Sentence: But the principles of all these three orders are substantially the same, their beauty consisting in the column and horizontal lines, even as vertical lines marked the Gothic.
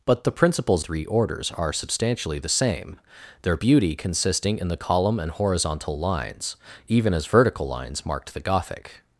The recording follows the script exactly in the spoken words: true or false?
false